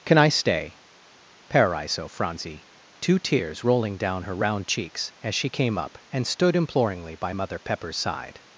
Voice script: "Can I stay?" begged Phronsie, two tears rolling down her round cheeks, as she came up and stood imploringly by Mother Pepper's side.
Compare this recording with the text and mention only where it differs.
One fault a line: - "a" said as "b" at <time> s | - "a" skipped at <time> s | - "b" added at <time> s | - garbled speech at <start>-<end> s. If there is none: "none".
- "begged" said as "paraiso" at 1.5 s